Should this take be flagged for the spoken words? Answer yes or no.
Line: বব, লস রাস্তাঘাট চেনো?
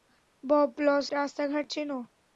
no